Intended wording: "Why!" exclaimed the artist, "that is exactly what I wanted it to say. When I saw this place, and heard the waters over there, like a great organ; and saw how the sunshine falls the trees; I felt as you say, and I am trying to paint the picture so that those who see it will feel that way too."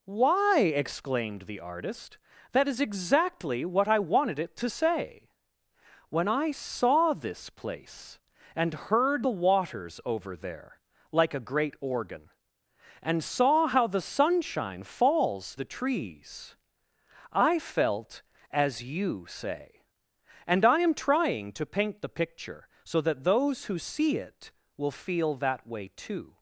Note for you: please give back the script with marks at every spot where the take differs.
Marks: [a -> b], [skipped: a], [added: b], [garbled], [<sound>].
"Why!" exclaimed the artist, "that is exactly what I wanted it to say. When I saw this place, and heard the waters over there, like a great organ; and saw how the sunshine falls the trees; I felt as you say, and I am trying to paint the picture so that those who see it will feel that way too."